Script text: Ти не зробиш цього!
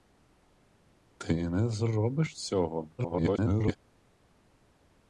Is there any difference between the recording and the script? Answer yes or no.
yes